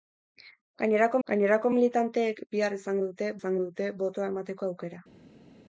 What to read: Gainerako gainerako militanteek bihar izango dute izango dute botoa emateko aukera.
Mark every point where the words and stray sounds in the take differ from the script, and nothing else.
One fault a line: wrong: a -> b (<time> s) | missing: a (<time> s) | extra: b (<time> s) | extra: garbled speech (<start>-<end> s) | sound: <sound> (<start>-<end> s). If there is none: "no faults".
no faults